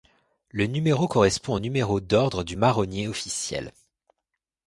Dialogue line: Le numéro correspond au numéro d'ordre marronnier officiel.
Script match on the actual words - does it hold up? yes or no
no